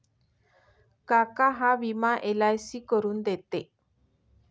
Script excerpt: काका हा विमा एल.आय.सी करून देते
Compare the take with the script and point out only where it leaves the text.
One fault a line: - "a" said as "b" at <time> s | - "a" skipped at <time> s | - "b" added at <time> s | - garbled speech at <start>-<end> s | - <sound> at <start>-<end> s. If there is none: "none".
none